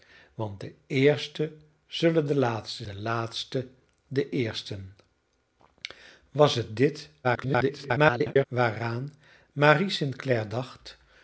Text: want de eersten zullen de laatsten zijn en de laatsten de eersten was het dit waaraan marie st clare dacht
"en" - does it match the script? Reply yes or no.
no